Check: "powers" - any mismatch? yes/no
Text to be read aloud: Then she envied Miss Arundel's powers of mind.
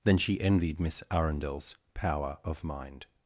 yes